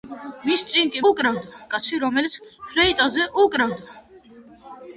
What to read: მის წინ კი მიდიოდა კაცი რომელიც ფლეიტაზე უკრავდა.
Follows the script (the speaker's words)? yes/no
no